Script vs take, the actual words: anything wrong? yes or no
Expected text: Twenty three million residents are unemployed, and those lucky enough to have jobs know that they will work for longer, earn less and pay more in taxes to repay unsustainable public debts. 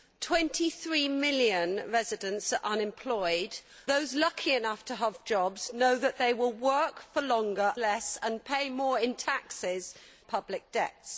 yes